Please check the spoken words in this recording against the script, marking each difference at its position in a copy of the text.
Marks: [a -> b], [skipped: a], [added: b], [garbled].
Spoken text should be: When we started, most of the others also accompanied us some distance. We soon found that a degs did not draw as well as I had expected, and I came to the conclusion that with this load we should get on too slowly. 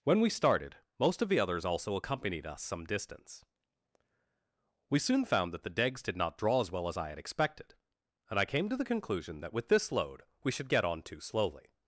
When we started, most of the others also accompanied us some distance. We soon found that [a -> the] degs did not draw as well as I had expected, and I came to the conclusion that with this load we should get on too slowly.